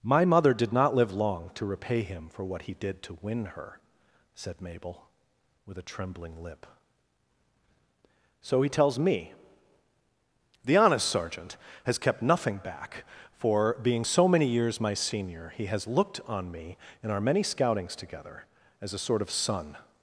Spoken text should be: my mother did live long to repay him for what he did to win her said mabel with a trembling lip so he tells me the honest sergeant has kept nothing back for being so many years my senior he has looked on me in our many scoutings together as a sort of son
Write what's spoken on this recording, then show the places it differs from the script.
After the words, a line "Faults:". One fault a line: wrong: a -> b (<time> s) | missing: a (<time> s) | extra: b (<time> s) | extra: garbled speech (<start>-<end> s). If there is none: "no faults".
my mother did not live long to repay him for what he did to win her said mabel with a trembling lip so he tells me the honest sergeant has kept nothing back for being so many years my senior he has looked on me in our many scoutings together as a sort of son
Faults:
extra: not (0.7 s)